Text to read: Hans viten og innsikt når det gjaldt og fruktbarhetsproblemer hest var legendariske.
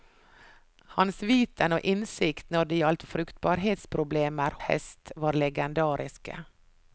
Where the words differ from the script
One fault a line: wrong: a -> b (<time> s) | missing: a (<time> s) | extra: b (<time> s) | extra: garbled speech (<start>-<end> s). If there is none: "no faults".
no faults